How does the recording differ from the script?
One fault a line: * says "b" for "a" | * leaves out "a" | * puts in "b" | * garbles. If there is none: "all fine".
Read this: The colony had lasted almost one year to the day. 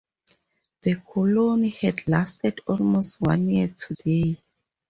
* leaves out "the"